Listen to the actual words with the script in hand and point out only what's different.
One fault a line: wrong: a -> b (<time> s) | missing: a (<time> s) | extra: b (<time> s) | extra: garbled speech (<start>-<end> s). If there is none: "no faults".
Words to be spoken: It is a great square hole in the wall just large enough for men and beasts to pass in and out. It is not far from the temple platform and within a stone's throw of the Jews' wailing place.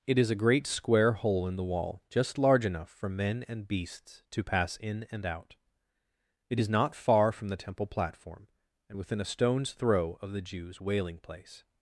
no faults